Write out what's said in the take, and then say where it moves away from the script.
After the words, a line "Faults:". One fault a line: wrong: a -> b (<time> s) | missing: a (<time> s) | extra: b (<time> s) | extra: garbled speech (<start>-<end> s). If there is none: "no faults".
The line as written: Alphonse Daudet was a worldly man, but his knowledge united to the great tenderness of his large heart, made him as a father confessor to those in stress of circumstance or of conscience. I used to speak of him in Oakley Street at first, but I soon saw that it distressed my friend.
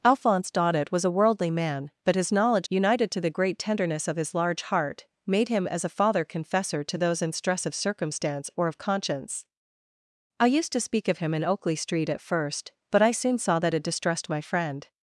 Alphonse Daudet was a worldly man, but his knowledge united to the great tenderness of his large heart, made him as a father confessor to those in stress of circumstance or of conscience. I used to speak of him in Oakley Street at first, but I soon saw that it distressed my friend.
Faults:
no faults